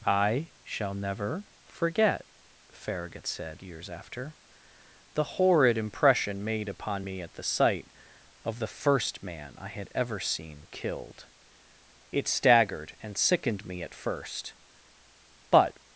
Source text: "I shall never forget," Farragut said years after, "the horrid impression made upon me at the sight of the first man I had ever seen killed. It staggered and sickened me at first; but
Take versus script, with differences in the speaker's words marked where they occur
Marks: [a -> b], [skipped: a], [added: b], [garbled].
"I shall never forget," Farragut said years after, "the horrid impression made upon me at the sight of the first man I had ever seen killed. It staggered and sickened me at first; but